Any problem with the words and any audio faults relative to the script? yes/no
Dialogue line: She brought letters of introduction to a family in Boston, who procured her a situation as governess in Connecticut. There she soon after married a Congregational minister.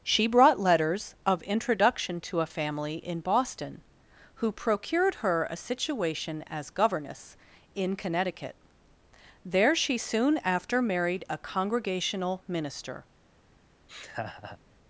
yes